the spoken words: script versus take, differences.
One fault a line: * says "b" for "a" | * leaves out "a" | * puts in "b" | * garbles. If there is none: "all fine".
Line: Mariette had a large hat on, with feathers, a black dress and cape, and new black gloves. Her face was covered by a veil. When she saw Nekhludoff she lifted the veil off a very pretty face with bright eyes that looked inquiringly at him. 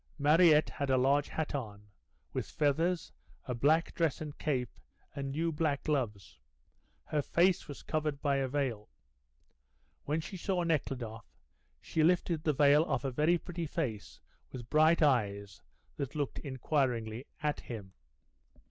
all fine